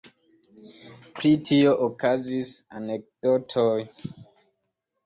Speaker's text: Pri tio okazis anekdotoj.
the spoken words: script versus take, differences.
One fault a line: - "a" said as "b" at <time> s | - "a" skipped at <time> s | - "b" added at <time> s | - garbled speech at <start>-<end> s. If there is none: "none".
none